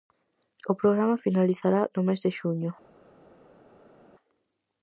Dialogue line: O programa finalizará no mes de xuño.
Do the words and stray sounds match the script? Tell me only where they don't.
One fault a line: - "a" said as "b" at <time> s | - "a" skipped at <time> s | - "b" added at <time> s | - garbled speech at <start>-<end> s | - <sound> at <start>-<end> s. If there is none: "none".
none